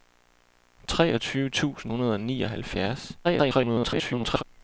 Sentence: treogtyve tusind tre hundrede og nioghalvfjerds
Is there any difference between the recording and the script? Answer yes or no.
yes